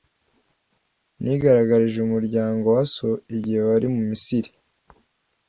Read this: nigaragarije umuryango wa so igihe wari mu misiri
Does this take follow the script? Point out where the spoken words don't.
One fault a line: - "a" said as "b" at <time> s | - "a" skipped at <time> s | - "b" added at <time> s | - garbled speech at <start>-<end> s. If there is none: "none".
none